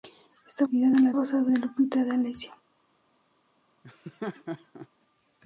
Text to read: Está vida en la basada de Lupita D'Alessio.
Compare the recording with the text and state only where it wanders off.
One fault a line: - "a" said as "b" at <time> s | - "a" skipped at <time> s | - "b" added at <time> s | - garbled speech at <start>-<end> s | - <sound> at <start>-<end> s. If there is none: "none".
- laugh at 3.8-4.9 s